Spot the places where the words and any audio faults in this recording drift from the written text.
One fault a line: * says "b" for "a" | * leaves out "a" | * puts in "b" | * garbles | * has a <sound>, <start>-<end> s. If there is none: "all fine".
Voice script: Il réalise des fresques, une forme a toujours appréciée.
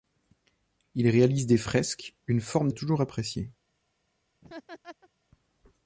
* has a laugh, 4.4-5.1 s